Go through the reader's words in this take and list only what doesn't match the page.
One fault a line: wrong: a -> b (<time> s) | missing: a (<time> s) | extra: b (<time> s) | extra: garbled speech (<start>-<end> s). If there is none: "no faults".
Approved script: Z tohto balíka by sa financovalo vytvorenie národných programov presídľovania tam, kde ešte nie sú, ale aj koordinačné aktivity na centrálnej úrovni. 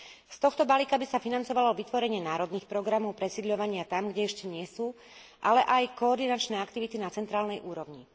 no faults